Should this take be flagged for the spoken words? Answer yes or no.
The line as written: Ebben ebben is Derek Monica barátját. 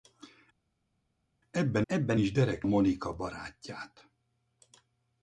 no